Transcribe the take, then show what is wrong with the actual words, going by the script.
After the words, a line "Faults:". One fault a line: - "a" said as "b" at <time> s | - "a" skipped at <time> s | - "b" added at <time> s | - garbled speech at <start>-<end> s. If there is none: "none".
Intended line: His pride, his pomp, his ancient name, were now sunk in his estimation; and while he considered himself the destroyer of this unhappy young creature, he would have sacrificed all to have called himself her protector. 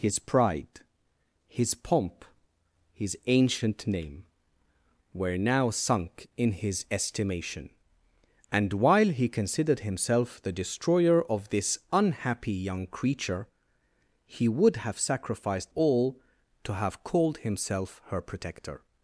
His pride, his pomp, his ancient name, were now sunk in his estimation; and while he considered himself the destroyer of this unhappy young creature, he would have sacrificed all to have called himself her protector.
Faults:
none